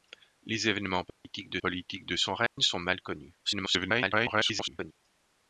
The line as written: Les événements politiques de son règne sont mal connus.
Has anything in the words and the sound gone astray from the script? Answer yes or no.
yes